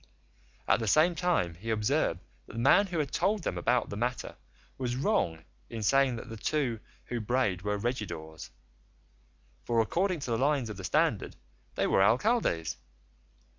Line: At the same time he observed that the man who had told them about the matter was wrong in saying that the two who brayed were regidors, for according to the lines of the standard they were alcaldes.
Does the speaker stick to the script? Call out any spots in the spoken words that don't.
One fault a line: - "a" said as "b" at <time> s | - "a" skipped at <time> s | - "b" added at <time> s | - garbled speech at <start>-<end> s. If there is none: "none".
none